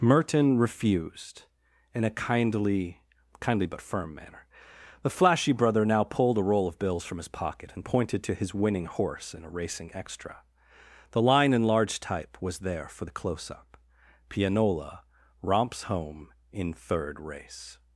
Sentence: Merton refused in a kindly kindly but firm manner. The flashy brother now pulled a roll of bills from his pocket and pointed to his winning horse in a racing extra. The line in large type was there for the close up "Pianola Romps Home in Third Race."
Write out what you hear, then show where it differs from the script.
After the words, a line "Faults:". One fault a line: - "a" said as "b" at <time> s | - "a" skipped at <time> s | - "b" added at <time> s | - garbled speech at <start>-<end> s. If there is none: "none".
Merton refused in a kindly kindly but firm manner. The flashy brother now pulled a roll of bills from his pocket and pointed to his winning horse in a racing extra. The line in large type was there for the close up "Pianola Romps Home in Third Race."
Faults:
none